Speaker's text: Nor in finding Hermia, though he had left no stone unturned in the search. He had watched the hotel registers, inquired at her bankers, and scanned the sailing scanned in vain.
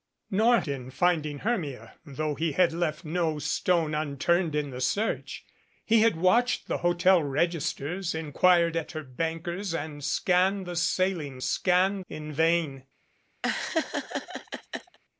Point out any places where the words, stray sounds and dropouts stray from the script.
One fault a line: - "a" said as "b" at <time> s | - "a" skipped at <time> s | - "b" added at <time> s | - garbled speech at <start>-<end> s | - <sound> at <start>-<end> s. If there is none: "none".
- laugh at 13.4-15.0 s